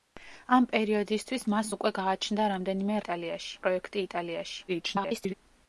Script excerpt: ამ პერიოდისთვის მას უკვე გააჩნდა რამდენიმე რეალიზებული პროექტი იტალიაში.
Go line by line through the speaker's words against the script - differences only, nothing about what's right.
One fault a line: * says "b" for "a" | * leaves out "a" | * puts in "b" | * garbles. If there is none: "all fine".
* says "იტალიაში" for "რეალიზებული"
* garbles